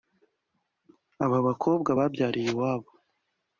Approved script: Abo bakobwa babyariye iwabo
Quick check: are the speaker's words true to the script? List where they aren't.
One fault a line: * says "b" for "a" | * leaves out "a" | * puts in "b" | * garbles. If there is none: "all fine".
* says "Aba" for "Abo"